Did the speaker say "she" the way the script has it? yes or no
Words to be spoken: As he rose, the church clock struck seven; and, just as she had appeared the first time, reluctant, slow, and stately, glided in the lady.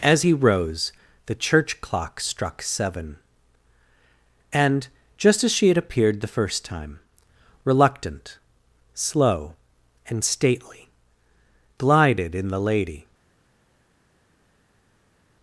yes